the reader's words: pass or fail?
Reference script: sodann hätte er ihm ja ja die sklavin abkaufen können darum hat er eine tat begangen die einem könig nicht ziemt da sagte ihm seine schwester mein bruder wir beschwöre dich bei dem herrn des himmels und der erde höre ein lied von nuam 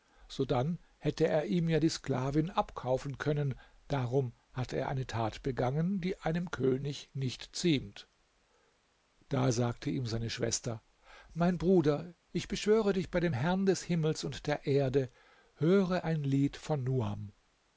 fail